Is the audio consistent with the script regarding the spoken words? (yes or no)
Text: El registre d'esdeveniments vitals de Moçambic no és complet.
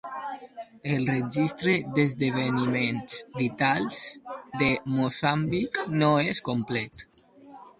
yes